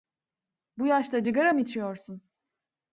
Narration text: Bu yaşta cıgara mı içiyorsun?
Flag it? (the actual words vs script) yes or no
no